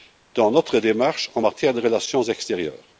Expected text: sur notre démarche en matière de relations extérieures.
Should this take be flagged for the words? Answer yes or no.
yes